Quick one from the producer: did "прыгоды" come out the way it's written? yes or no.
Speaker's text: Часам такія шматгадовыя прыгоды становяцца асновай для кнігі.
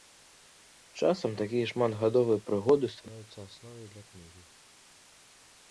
yes